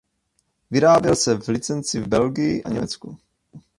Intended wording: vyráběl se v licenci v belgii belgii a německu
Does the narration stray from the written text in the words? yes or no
yes